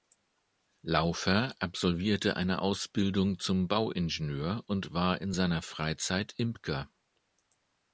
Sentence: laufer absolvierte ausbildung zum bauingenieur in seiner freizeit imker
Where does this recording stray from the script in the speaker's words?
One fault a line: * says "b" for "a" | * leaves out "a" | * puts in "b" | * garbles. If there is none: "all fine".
* puts in "eine"
* puts in "und war"